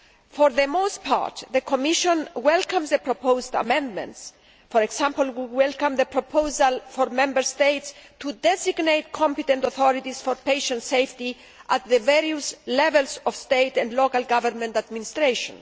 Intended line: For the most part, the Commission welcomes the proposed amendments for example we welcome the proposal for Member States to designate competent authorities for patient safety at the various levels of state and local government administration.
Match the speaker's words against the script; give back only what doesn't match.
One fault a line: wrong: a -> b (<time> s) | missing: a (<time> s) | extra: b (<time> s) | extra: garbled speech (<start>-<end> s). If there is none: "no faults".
no faults